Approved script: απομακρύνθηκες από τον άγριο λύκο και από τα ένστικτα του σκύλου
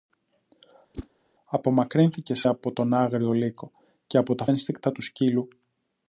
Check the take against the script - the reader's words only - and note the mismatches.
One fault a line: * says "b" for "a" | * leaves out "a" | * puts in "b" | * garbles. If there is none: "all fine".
all fine